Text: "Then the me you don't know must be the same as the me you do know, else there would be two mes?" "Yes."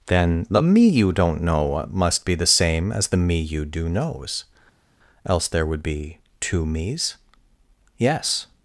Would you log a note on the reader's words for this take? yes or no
yes